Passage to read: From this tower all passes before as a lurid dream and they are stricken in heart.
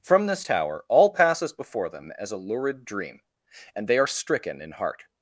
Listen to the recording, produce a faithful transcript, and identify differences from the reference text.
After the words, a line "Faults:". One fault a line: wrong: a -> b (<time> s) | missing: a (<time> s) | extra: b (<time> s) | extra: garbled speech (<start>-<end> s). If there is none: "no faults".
From this tower all passes before them as a lurid dream and they are stricken in heart.
Faults:
extra: them (1.9 s)